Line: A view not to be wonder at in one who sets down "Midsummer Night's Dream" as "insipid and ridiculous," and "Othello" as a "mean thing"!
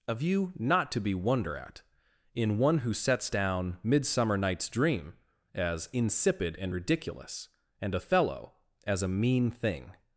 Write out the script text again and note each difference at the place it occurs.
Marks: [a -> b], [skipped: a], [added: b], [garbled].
A view not to be wonder at in one who sets down "Midsummer Night's Dream" as "insipid and ridiculous," and "Othello" as a "mean thing"!